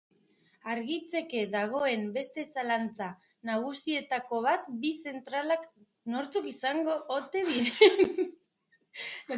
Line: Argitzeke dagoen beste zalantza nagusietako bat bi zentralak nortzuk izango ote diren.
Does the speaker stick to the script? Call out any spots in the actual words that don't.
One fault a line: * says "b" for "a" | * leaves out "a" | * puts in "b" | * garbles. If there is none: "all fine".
all fine